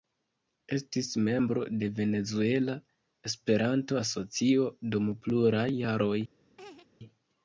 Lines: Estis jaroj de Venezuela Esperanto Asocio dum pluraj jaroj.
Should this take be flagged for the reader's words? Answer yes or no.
yes